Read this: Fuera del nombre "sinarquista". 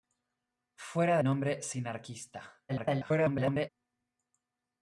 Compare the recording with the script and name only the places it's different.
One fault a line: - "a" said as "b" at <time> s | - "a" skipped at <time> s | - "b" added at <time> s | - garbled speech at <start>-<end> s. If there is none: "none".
- "del" skipped at 1.2 s
- garbled speech at 2.7-3.7 s